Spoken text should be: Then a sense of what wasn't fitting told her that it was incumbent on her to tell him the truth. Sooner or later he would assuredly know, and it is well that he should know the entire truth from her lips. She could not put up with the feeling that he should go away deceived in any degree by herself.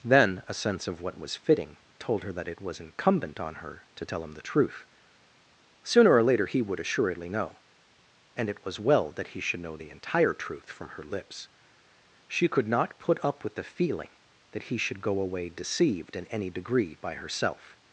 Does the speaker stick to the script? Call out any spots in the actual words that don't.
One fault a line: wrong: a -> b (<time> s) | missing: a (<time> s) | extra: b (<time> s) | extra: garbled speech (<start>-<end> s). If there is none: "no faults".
wrong: wasn't -> was (1.2 s)
wrong: is -> was (8.7 s)